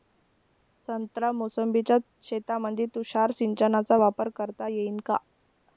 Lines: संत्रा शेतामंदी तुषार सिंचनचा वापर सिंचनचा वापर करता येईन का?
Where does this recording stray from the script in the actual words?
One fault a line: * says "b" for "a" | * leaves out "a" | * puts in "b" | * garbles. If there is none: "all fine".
* puts in "मोसंबीच्या"
* leaves out "सिंचनचा वापर"